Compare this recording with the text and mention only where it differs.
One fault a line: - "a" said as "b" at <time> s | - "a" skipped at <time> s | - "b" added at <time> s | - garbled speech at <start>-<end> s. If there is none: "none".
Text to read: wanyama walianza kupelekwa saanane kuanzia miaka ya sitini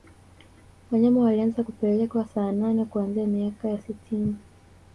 none